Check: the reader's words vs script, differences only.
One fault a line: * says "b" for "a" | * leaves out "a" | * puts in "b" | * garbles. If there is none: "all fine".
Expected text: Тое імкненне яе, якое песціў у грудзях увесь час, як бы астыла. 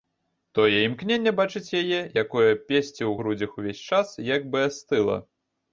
* puts in "бачыць"